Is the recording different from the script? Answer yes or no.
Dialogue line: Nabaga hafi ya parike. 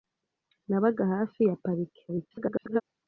yes